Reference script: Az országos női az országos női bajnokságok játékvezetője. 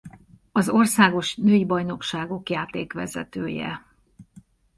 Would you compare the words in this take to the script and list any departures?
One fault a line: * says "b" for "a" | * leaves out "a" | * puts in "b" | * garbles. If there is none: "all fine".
* leaves out "az országos női"